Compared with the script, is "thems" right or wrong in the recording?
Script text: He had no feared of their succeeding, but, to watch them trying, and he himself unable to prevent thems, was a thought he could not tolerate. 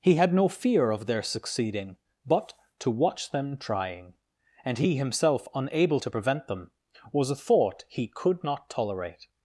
wrong